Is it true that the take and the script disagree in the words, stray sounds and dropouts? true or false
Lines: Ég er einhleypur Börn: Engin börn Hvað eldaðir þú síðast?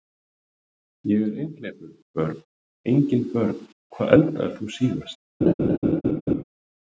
true